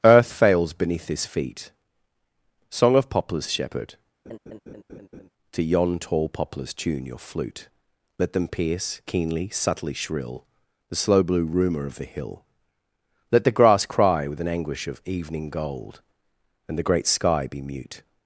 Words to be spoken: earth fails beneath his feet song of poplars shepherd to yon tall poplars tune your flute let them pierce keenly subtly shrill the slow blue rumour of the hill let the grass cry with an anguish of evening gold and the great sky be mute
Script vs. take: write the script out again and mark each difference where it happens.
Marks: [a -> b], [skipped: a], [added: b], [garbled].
earth fails beneath his feet song of poplars shepherd to yon tall poplars tune your flute let them pierce keenly subtly shrill the slow blue rumour of the hill let the grass cry with an anguish of evening gold and the great sky be mute